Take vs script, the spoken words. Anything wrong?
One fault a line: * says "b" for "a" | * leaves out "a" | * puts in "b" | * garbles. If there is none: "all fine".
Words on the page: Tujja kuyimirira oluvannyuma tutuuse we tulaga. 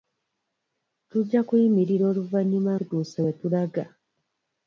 all fine